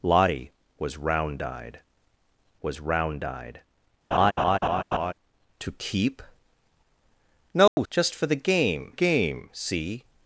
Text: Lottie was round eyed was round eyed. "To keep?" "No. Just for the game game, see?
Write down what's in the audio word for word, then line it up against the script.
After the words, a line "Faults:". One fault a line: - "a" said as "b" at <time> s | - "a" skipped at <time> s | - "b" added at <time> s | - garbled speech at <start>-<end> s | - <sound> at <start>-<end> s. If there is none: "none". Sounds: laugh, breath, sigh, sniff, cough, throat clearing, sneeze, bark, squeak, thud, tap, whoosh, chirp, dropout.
Lottie was round eyed was round eyed. "To keep?" "No. Just for the game game, see?
Faults:
- laugh at 4.1-5.1 s
- dropout at 7.7-7.8 s